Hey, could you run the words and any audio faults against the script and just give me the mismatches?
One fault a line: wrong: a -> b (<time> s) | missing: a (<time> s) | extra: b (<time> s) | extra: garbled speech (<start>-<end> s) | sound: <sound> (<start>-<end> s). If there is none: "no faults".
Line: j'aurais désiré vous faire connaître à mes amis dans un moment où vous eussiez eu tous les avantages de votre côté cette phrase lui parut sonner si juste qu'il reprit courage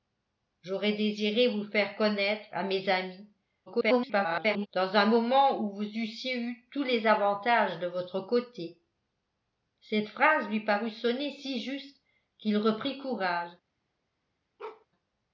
extra: garbled speech (3.7-4.7 s)
sound: bark (14.6-14.9 s)